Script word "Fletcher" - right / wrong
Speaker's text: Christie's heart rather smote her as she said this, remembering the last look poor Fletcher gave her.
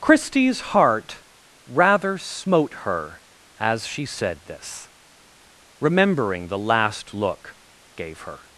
wrong